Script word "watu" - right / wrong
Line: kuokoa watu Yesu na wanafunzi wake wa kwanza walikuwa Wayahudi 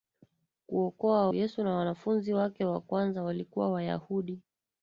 wrong